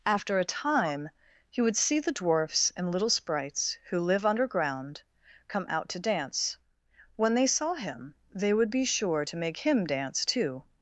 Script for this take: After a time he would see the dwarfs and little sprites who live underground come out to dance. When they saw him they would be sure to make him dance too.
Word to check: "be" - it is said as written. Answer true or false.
true